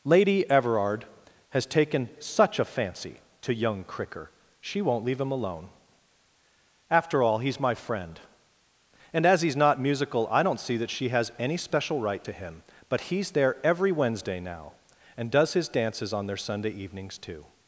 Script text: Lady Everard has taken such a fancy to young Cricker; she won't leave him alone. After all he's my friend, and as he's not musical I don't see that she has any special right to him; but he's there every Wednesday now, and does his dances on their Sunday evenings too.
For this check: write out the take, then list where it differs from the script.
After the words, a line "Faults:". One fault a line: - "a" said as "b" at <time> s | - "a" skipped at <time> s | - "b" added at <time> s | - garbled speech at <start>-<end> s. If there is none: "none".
Lady Everard has taken such a fancy to young Cricker; she won't leave him alone. After all he's my friend, and as he's not musical I don't see that she has any special right to him; but he's there every Wednesday now, and does his dances on their Sunday evenings too.
Faults:
none